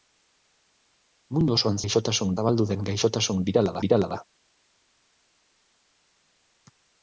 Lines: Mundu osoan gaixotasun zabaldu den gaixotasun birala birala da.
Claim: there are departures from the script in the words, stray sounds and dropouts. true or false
false